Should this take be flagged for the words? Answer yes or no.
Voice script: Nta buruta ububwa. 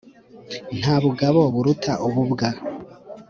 yes